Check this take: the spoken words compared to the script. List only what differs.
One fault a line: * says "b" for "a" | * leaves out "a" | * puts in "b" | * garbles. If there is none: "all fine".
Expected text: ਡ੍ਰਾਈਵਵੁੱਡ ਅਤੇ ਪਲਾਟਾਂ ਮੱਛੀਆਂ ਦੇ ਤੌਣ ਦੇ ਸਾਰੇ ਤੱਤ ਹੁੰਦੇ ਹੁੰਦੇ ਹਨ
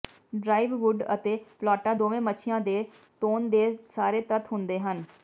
* puts in "ਦੋਵੇਂ"
* leaves out "ਹੁੰਦੇ"